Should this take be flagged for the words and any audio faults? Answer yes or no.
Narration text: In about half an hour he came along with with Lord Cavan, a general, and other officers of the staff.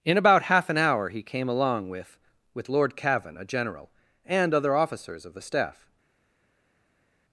no